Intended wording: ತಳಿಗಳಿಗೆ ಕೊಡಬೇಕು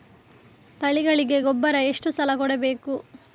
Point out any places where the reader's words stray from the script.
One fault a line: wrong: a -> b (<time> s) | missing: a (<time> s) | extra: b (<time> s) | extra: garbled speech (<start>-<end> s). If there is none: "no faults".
extra: ಗೊಬ್ಬರ ಎಷ್ಟು ಸಲ (1.4 s)